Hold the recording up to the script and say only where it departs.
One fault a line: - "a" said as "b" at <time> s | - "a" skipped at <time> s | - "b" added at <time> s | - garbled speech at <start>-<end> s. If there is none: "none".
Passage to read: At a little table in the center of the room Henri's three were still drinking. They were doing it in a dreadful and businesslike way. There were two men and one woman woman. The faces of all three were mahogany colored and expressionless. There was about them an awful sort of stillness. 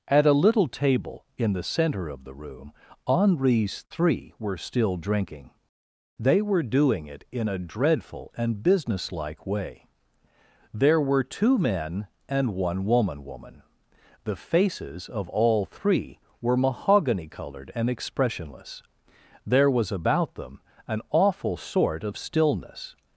none